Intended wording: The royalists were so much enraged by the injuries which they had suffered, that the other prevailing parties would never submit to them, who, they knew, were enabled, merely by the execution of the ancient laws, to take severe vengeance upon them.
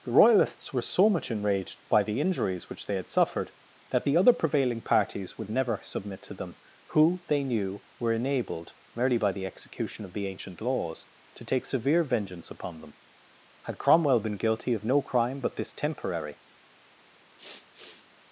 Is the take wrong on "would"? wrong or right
right